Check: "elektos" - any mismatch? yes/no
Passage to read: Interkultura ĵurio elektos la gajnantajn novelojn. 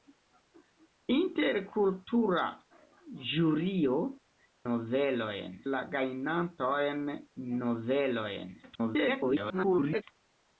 yes